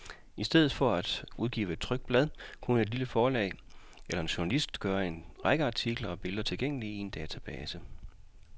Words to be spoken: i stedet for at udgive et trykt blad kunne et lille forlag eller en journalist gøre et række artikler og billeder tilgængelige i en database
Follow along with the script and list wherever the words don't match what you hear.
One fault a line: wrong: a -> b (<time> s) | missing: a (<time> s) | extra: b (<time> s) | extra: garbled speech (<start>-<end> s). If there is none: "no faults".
wrong: et -> en (5.1 s)